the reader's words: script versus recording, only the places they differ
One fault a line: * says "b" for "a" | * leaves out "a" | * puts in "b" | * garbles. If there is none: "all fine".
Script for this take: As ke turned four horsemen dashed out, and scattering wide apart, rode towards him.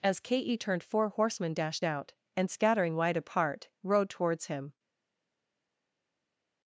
all fine